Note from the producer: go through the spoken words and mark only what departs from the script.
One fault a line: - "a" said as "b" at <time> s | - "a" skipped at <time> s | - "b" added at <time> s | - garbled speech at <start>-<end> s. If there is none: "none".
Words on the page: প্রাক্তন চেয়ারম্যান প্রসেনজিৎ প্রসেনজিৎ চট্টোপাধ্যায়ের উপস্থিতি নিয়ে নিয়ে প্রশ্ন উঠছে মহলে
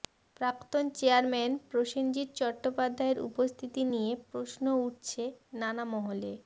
- "প্রসেনজিৎ" skipped at 2.3 s
- "নিয়ে" skipped at 4.1 s
- "নানা" added at 5.6 s